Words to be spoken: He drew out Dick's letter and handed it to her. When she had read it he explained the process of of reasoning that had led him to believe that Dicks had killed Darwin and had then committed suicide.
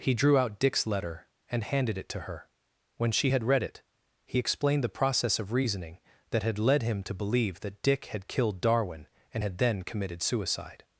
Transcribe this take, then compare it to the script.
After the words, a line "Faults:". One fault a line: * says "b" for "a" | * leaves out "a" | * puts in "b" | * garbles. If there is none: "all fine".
He drew out Dick's letter and handed it to her. When she had read it he explained the process of reasoning that had led him to believe that Dick had killed Darwin and had then committed suicide.
Faults:
* leaves out "of"
* says "Dick" for "Dicks"